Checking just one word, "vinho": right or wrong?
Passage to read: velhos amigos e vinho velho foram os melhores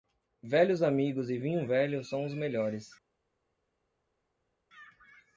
right